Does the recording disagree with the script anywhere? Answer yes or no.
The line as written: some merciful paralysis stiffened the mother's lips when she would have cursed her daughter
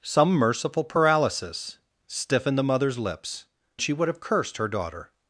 yes